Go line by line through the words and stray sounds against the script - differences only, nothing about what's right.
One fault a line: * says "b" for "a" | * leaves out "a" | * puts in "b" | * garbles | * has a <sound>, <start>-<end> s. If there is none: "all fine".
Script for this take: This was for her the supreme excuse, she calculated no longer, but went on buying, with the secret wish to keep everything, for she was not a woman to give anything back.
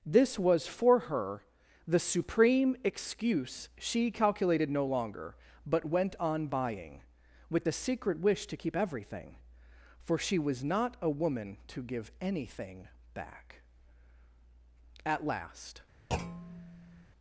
* puts in "At last"
* has a thud, 16.1-17.1 s